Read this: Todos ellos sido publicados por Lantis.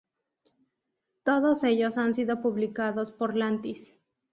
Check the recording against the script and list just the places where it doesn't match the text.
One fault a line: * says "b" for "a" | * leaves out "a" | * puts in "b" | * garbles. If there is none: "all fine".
* puts in "han"